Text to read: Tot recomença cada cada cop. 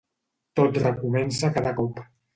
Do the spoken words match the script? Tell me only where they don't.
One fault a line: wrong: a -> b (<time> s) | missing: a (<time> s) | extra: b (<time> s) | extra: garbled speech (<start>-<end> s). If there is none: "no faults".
missing: cada (1.7 s)